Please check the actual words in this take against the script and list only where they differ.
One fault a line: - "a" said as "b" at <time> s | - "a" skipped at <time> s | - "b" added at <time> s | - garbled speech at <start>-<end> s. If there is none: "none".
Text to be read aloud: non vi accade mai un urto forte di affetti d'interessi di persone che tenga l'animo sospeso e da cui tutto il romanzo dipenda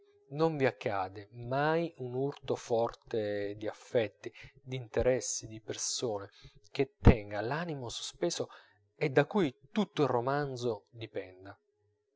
none